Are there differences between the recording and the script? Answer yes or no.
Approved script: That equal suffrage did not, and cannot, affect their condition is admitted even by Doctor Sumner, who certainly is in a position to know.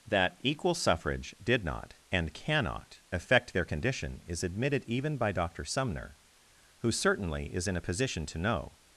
no